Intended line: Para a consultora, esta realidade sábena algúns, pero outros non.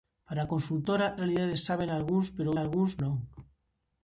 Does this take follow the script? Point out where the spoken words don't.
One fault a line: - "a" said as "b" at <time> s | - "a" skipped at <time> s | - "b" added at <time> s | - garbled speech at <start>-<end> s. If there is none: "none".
- "esta" skipped at 1.1 s
- "outros" said as "algúns" at 2.6 s